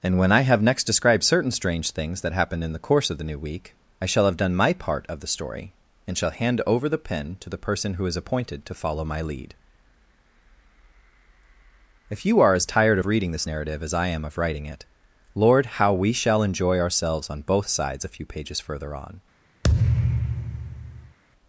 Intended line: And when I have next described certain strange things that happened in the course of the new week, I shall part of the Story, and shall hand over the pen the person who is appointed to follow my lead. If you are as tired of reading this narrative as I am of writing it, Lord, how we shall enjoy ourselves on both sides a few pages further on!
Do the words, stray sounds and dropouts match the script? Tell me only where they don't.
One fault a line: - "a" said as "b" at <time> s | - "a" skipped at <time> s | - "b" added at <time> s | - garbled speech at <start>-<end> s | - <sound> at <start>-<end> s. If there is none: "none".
- "have done my" added at 4.2 s
- "to" added at 7.4 s
- thud at 19.6-21.2 s